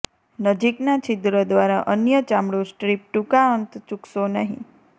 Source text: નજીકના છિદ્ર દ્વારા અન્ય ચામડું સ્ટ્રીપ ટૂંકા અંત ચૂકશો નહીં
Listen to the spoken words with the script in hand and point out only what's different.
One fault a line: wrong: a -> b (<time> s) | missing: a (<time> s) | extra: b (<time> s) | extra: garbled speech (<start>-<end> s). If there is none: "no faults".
no faults